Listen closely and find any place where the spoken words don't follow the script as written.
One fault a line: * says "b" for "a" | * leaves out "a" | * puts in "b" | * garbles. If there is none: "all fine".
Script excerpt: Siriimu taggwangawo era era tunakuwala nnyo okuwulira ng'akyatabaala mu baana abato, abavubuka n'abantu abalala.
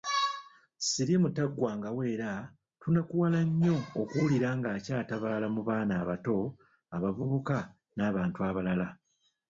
* leaves out "era"